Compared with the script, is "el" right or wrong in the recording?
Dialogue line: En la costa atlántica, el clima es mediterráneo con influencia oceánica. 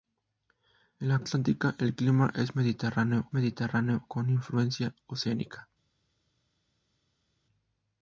right